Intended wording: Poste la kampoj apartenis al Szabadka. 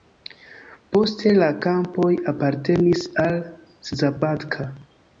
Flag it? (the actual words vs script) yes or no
no